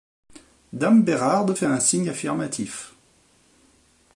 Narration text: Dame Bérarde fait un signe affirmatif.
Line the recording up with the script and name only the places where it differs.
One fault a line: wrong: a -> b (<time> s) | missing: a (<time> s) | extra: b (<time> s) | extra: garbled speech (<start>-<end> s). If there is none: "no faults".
no faults